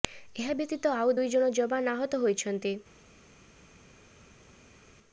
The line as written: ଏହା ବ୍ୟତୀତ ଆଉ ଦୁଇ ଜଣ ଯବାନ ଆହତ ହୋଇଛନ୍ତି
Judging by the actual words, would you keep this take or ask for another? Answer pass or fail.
pass